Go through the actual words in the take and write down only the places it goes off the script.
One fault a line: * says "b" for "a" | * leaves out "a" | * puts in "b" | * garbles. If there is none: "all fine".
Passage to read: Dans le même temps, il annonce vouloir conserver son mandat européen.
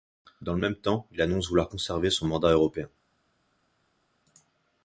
all fine